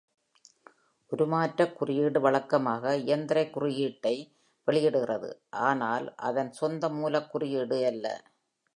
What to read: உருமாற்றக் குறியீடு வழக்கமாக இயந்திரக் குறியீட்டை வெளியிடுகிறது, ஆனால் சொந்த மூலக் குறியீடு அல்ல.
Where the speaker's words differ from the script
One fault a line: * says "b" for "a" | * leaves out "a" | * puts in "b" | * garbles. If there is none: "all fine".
* puts in "அதன்"